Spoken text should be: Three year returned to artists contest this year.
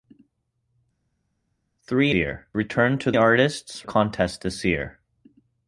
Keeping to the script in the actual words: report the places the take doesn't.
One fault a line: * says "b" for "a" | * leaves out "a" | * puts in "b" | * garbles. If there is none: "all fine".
all fine